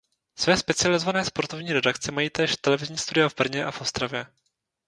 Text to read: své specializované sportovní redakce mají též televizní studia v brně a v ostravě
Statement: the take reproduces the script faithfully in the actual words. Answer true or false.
true